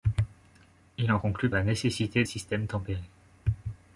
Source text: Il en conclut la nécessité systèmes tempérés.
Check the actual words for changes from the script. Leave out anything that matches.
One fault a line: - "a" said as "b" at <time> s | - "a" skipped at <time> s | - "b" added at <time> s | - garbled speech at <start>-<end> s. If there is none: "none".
none